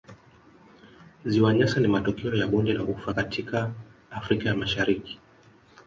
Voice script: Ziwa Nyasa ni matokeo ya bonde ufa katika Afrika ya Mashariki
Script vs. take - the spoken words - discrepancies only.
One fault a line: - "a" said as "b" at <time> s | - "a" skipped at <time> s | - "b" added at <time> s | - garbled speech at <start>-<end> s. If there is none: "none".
- "la" added at 2.7 s